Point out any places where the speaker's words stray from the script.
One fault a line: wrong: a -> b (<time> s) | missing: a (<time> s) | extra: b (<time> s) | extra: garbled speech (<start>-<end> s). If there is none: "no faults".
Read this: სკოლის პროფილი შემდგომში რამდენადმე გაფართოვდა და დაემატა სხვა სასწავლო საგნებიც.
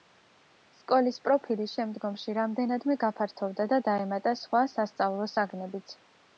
no faults